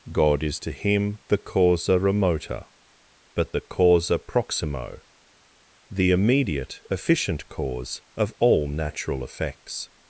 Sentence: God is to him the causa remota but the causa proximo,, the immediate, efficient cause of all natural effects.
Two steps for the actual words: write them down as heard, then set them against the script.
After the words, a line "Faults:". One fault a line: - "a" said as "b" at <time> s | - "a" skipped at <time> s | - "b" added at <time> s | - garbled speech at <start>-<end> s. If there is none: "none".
God is to him the causa remota but the causa proximo,, the immediate, efficient cause of all natural effects.
Faults:
none